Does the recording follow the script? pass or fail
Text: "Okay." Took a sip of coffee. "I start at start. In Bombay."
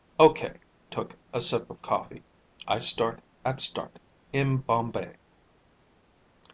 pass